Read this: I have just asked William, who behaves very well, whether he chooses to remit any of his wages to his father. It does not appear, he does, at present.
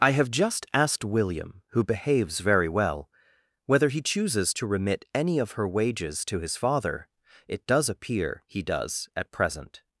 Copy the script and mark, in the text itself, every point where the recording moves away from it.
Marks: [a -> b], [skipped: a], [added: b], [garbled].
I have just asked William, who behaves very well, whether he chooses to remit any of [his -> her] wages to his father. It does [skipped: not] appear, he does, at present.